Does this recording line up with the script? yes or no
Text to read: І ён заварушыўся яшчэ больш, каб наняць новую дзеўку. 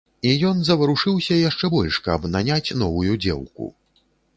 yes